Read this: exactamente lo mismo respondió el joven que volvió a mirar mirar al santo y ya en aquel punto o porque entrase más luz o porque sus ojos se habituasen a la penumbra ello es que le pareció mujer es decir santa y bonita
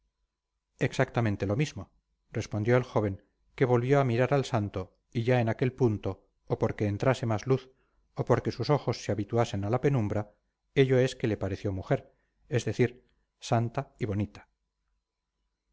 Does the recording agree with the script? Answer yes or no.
no